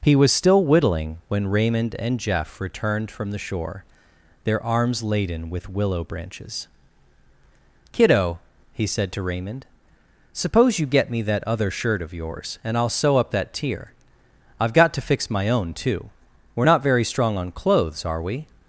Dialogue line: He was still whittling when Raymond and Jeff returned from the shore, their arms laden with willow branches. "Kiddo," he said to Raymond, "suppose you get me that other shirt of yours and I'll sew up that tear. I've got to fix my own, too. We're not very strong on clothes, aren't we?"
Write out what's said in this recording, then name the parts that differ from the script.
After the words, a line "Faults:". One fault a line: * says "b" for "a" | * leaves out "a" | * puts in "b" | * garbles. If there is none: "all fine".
He was still whittling when Raymond and Jeff returned from the shore, their arms laden with willow branches. "Kiddo," he said to Raymond, "suppose you get me that other shirt of yours and I'll sew up that tear. I've got to fix my own, too. We're not very strong on clothes, are we?"
Faults:
* says "are" for "aren't"